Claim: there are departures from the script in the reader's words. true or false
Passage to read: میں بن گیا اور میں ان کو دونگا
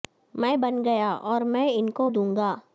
false